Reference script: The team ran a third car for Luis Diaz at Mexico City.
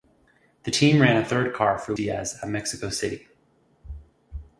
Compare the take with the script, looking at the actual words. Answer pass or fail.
fail